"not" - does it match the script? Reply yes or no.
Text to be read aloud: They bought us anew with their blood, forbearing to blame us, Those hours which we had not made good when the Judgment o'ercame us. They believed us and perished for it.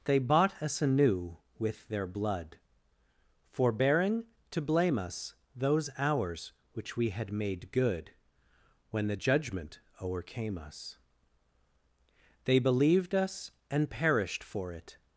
no